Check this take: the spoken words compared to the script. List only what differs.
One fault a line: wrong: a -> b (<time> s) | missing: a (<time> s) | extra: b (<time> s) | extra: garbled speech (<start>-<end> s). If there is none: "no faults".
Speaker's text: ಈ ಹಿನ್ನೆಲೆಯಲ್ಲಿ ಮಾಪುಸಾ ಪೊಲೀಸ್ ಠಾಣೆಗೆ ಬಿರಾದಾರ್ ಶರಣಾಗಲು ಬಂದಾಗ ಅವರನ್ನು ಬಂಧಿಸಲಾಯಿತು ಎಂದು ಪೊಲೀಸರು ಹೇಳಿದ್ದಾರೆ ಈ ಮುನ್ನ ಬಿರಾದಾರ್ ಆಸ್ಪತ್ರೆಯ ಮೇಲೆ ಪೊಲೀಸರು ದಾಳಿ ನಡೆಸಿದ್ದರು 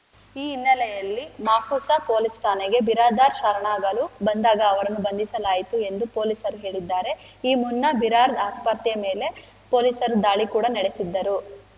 extra: ಕೂಡ (10.5 s)